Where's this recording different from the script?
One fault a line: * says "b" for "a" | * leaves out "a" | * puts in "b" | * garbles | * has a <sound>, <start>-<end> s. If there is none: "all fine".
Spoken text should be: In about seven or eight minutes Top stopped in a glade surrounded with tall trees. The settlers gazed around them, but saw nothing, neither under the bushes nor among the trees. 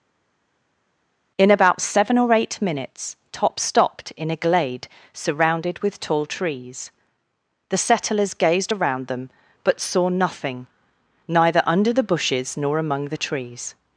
all fine